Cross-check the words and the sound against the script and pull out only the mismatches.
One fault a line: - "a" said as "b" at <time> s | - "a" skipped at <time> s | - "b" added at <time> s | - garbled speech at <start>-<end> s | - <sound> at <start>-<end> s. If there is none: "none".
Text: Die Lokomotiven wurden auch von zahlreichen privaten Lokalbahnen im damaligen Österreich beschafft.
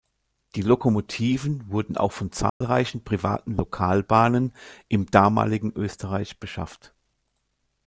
- dropout at 2.5-2.6 s